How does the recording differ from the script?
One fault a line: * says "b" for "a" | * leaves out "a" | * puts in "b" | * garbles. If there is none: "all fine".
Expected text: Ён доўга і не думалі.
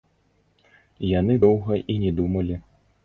* says "Яны" for "Ён"